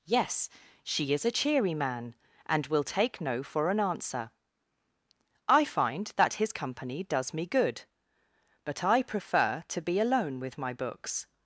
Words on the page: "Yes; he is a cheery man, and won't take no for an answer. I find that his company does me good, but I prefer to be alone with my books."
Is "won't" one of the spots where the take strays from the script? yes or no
yes